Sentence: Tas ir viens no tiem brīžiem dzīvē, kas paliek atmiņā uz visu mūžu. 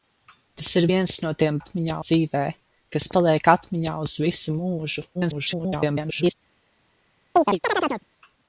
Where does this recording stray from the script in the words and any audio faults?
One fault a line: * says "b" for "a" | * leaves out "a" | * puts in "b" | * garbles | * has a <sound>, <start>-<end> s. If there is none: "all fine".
* says "atmiņā" for "brīžiem"
* garbles
* has a chirp, 7.4-8.0 s